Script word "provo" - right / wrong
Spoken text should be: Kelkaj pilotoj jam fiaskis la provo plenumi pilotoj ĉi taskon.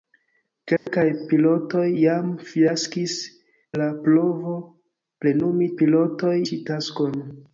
right